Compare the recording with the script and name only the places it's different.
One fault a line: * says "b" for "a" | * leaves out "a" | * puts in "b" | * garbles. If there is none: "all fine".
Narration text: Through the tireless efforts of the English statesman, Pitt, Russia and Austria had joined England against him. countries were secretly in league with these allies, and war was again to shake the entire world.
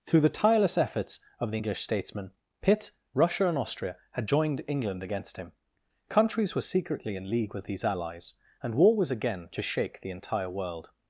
all fine